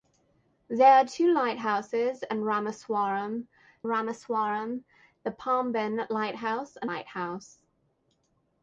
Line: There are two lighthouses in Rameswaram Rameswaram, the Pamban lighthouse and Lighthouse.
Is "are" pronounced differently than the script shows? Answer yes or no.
no